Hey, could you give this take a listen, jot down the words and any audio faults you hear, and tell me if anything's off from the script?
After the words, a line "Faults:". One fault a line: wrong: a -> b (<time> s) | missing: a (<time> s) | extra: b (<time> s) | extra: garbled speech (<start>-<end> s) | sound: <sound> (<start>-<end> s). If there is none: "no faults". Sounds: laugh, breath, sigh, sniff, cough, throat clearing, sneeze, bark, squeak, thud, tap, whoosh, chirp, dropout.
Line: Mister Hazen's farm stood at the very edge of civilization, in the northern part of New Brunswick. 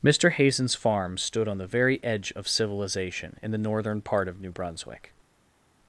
Mister Hazen's farm stood on the very edge of civilization, in the northern part of New Brunswick.
Faults:
wrong: at -> on (1.5 s)